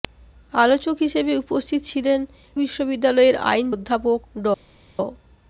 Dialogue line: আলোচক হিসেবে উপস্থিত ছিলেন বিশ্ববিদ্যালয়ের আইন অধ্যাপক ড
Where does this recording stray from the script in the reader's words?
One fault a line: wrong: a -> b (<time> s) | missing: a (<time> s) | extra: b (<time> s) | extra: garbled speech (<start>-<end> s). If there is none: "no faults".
no faults